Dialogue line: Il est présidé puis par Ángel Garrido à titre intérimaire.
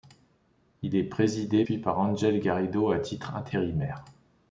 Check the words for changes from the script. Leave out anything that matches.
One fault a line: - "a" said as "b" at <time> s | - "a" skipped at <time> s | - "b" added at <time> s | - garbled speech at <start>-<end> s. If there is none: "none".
none